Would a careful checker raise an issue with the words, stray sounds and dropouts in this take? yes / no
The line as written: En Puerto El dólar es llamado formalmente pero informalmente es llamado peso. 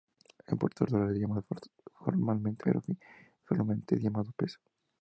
no